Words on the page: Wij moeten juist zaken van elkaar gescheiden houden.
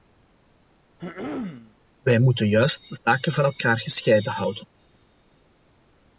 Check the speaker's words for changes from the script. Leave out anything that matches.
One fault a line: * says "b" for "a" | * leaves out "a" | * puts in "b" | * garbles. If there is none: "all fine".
all fine